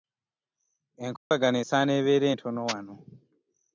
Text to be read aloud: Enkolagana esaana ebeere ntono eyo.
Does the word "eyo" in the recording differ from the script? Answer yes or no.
yes